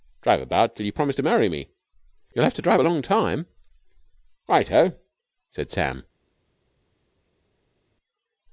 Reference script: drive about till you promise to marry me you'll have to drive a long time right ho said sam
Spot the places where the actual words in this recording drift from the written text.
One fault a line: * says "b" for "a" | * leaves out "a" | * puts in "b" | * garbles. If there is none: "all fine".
all fine